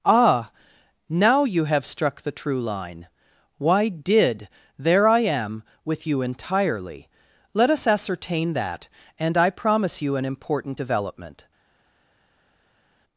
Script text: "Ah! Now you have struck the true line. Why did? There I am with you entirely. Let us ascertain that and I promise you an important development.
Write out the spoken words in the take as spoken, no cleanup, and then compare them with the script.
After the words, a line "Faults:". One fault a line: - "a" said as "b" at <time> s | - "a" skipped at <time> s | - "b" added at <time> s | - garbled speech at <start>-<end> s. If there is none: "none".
"Ah! Now you have struck the true line. Why did? There I am with you entirely. Let us ascertain that and I promise you an important development.
Faults:
none